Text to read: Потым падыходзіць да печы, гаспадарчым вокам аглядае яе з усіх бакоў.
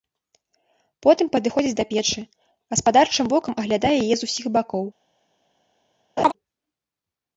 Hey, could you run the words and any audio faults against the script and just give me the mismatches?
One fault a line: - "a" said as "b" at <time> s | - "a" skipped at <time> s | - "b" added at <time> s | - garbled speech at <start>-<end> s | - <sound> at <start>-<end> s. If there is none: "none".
- laugh at 6.2-6.3 s